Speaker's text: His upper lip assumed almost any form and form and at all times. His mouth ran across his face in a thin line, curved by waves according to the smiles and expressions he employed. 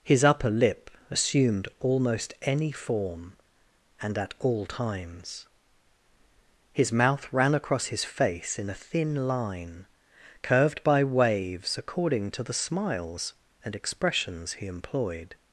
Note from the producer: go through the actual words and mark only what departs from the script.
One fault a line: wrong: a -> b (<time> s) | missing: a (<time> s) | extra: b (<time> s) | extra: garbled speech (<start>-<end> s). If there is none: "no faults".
missing: form and (4.2 s)